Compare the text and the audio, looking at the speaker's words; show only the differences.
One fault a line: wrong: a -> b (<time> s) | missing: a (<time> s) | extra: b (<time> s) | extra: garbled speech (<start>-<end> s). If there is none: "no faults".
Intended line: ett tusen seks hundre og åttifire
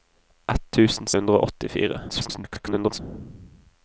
missing: seks (1.1 s)
extra: garbled speech (2.1-3.0 s)